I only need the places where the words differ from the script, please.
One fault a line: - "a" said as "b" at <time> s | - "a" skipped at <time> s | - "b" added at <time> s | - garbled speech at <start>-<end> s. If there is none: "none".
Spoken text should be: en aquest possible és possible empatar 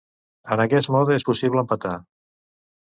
- "possible" said as "mode" at 0.9 s